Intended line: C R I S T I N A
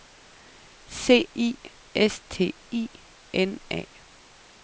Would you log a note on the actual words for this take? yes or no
yes